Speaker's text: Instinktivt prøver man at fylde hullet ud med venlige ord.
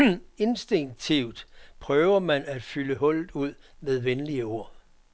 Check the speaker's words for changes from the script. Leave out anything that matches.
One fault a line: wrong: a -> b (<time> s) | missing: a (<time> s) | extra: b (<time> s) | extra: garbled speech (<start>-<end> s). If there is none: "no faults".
no faults